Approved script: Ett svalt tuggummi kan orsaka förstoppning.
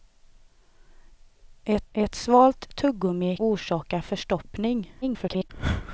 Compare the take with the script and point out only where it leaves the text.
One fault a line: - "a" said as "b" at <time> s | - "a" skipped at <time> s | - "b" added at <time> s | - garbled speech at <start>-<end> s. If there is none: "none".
- "ett" added at 1.9 s
- "kan" skipped at 3.4 s
- garbled speech at 5.0-5.5 s